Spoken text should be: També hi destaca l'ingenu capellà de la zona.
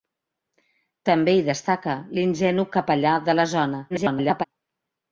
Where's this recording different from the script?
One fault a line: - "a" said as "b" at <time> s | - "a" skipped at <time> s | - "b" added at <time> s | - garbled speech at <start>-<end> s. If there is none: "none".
- garbled speech at 3.9-4.4 s